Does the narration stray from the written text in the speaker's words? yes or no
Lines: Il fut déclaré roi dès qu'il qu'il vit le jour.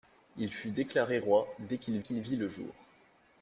no